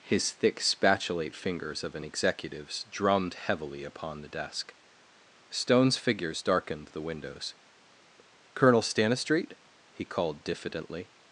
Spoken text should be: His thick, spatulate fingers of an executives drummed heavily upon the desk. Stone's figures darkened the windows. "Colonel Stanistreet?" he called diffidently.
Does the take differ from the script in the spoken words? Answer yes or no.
no